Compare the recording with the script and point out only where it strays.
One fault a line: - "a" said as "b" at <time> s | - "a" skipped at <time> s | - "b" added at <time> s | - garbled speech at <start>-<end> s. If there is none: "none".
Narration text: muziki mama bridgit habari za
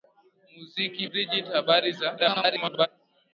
- "mama" skipped at 1.0 s
- garbled speech at 2.2-2.9 s